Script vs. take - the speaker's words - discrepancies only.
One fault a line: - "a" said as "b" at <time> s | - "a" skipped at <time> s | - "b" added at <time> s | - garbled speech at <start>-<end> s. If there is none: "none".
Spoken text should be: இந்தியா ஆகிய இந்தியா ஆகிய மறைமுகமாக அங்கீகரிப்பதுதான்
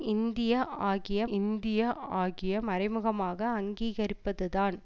none